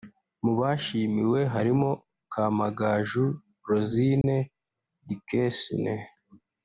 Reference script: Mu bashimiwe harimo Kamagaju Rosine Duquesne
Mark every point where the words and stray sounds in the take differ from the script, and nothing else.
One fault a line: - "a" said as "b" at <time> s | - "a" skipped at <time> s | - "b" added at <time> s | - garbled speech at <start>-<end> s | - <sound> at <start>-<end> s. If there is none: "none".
- dropout at 4.2-4.2 s